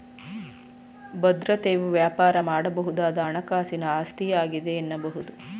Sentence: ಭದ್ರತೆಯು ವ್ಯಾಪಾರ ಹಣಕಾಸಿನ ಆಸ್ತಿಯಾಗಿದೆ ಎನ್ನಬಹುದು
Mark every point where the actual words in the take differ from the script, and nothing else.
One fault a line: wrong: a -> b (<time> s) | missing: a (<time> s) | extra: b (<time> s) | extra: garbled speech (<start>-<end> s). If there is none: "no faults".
extra: ಮಾಡಬಹುದಾದ (2.5 s)